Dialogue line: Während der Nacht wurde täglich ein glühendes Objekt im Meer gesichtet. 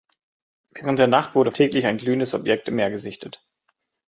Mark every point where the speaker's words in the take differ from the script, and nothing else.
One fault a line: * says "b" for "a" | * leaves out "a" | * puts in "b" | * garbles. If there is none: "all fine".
all fine